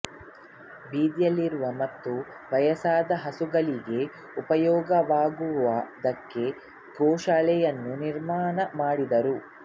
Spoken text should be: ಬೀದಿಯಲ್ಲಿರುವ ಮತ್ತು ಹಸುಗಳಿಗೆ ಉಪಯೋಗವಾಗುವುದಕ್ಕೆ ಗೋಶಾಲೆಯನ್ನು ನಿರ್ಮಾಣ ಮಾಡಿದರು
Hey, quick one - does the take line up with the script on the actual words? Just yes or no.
no